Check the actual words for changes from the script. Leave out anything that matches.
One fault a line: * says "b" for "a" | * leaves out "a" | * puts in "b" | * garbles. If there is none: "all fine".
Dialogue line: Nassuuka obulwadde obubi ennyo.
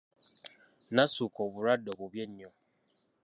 all fine